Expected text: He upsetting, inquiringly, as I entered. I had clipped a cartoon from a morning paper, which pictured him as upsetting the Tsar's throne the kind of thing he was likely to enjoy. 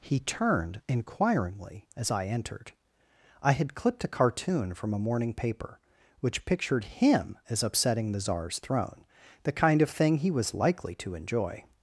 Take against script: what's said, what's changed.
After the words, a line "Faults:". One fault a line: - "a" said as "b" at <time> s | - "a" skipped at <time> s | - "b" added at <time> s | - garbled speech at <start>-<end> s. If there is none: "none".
He turned, inquiringly, as I entered. I had clipped a cartoon from a morning paper, which pictured him as upsetting the Tsar's throne the kind of thing he was likely to enjoy.
Faults:
- "upsetting" said as "turned" at 0.2 s